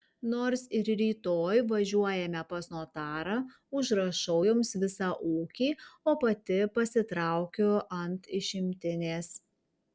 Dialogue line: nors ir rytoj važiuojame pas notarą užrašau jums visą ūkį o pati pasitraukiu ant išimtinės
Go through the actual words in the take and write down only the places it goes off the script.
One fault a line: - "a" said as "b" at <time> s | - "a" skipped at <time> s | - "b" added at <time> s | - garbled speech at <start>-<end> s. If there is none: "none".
none